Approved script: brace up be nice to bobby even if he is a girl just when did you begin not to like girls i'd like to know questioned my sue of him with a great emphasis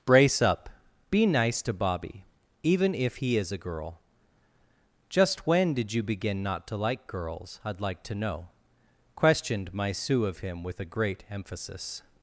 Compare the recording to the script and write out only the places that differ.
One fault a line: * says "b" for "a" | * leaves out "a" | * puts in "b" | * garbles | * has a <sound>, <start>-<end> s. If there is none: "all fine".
all fine